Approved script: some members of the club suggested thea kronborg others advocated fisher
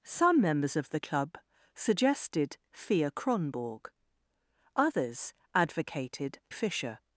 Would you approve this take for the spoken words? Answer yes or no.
yes